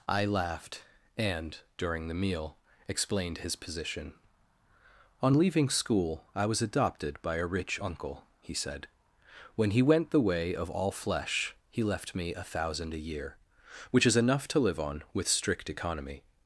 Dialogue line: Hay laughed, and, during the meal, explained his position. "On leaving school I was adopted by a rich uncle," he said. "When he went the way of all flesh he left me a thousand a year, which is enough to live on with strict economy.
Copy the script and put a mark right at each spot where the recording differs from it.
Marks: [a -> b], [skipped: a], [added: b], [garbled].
[Hay -> I] laughed, and, during the meal, explained his position. "On leaving school I was adopted by a rich uncle," he said. "When he went the way of all flesh he left me a thousand a year, which is enough to live on with strict economy.